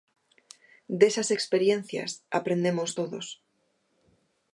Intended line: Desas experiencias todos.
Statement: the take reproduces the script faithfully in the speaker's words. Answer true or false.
false